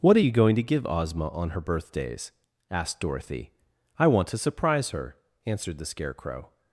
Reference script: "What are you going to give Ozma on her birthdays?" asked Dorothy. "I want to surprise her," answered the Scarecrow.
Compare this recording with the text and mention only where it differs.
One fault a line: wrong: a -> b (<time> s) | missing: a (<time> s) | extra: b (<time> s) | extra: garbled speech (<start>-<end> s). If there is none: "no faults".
no faults